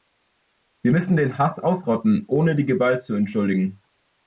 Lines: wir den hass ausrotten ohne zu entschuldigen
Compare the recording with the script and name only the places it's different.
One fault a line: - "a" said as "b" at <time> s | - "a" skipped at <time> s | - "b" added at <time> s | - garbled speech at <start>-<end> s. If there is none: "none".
- "müssen" added at 0.9 s
- "die gewalt" added at 2.5 s